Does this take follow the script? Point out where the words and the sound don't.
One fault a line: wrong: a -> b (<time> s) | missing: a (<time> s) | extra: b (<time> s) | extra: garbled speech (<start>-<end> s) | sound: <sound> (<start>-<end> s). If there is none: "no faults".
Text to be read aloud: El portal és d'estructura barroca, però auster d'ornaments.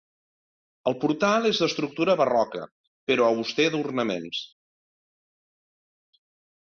no faults